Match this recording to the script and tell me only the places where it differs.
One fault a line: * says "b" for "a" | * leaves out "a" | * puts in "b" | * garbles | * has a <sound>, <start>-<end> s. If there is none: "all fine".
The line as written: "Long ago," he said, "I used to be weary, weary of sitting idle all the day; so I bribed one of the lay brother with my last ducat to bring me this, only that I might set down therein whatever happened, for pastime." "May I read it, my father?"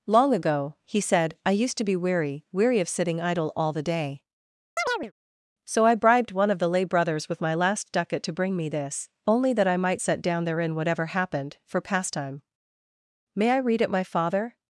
* has a chirp, 4.8-5.1 s
* says "brothers" for "brother"